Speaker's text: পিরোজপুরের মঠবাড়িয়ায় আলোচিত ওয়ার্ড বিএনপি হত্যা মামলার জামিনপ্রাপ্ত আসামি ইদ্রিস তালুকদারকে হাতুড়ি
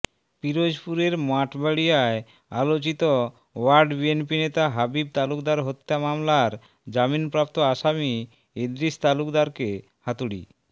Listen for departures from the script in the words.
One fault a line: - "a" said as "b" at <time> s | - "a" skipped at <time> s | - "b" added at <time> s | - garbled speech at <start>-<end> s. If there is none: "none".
- "নেতা হাবিব তালুকদার" added at 4.4 s